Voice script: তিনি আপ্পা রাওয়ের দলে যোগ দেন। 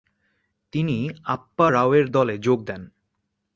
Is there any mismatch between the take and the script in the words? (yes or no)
no